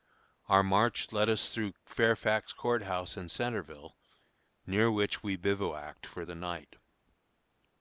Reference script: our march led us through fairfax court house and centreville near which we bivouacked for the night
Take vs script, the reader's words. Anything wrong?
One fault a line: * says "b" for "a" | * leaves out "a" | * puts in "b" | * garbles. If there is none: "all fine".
all fine